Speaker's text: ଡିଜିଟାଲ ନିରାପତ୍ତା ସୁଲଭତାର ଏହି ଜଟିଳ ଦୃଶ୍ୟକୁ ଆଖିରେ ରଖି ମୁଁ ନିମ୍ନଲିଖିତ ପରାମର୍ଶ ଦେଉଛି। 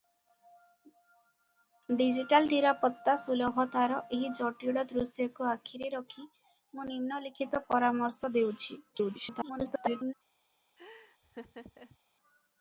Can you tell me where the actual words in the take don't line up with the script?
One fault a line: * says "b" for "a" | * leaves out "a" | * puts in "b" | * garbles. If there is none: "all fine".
* garbles